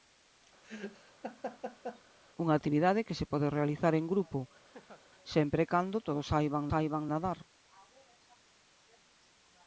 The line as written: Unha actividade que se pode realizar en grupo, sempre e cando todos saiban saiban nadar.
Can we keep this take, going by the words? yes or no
yes